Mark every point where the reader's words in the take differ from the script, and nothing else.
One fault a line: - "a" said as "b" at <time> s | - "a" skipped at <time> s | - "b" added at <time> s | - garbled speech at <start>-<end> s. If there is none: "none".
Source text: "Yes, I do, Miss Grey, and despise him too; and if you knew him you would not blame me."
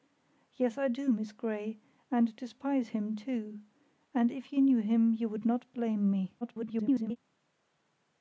- garbled speech at 6.4-7.2 s